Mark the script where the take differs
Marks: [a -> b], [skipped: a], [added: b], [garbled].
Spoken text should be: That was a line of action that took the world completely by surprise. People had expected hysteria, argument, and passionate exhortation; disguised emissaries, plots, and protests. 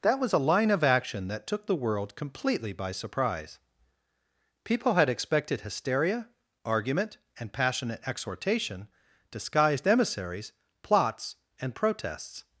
That was a line of action that took the world completely by surprise. People had expected hysteria, argument, and passionate exhortation; disguised emissaries, plots, and protests.